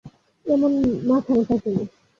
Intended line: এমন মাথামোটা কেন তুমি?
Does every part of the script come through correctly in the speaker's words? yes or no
no